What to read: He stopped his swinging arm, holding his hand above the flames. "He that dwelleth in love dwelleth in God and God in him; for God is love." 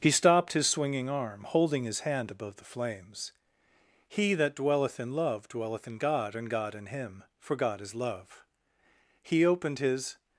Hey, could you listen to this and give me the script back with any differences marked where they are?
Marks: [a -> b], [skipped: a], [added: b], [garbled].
He stopped his swinging arm, holding his hand above the flames. "He that dwelleth in love dwelleth in God and God in him; for God is love." [added: He opened his]